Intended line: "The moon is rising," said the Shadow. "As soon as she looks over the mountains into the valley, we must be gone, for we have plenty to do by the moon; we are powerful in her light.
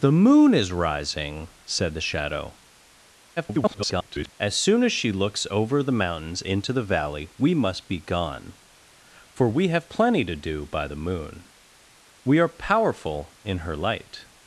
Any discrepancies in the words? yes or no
yes